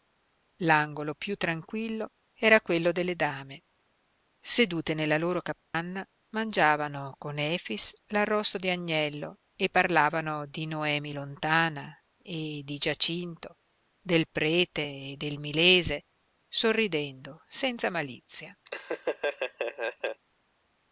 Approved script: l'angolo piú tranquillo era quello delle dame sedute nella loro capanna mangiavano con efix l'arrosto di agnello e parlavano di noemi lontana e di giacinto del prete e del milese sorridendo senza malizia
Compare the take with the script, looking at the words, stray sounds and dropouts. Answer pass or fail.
fail